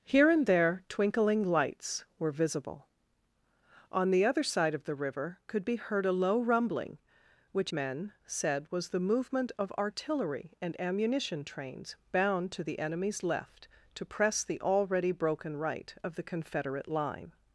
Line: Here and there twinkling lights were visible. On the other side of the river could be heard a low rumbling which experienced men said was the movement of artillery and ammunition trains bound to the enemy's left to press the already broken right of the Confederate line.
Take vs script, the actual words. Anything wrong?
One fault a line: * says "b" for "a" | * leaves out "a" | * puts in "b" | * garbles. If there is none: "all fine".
* leaves out "experienced"